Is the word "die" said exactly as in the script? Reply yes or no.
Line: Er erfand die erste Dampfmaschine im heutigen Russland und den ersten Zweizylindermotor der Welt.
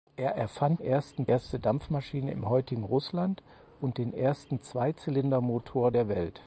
no